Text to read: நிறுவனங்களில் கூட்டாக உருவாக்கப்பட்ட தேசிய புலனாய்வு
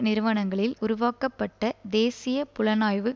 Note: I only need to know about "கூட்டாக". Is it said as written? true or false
false